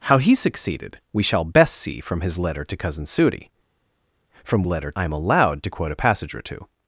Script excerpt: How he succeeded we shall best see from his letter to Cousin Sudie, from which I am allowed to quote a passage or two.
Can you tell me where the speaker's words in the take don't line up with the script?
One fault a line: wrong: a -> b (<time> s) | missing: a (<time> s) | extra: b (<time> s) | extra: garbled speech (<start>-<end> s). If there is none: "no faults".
wrong: which -> letter (4.7 s)